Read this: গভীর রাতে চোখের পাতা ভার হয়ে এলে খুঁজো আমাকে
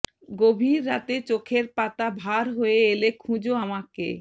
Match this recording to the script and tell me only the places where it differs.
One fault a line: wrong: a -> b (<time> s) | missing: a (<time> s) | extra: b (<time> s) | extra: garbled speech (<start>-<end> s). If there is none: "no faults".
no faults